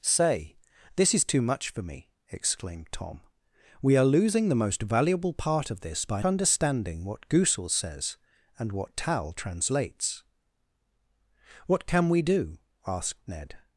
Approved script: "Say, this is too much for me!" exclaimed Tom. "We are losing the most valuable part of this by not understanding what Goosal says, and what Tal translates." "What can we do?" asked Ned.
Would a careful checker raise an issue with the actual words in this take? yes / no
yes